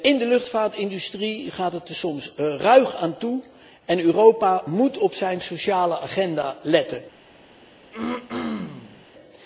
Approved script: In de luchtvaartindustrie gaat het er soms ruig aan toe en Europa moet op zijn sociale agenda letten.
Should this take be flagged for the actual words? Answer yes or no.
no